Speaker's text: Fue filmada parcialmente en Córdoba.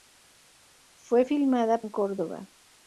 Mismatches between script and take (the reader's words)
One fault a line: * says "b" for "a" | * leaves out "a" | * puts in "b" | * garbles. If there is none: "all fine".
* leaves out "parcialmente"